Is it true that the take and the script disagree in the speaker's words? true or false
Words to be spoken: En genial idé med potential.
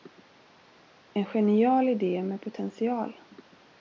false